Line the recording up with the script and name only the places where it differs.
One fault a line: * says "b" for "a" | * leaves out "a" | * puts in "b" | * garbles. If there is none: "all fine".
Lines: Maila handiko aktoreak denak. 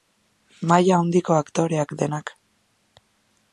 all fine